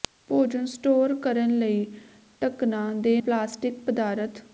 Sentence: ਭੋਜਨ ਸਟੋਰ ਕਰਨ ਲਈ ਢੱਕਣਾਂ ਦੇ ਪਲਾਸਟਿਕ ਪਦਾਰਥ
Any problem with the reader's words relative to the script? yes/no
no